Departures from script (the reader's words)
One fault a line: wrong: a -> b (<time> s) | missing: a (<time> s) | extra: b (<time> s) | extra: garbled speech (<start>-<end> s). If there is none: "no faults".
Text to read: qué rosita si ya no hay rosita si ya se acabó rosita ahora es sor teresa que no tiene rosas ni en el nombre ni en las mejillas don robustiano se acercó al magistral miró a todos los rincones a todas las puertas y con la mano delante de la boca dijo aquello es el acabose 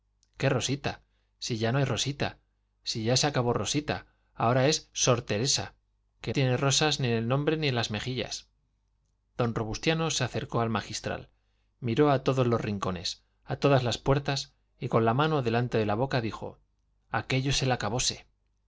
missing: no (6.3 s)